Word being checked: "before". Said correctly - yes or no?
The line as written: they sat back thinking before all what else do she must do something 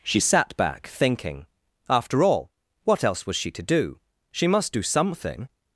no